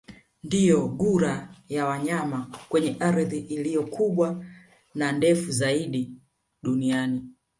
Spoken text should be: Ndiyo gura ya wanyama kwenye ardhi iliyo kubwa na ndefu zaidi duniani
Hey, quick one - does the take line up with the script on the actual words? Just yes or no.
yes